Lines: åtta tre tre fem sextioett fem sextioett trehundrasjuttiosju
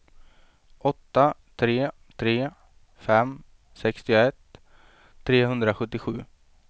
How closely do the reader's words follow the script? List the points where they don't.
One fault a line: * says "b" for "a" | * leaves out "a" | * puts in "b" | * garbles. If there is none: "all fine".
* leaves out "fem sextioett"